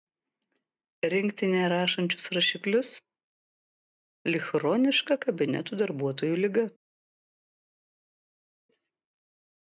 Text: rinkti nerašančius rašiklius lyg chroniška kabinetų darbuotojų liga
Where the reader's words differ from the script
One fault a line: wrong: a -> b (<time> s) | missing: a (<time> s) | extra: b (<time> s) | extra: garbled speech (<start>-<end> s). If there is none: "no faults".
no faults